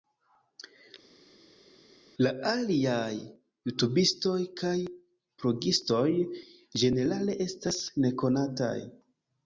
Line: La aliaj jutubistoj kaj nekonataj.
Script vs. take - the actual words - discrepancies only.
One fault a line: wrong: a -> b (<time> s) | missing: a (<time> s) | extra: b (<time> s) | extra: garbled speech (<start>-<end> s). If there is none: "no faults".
extra: blogistoj ĝenerale estas (5.4 s)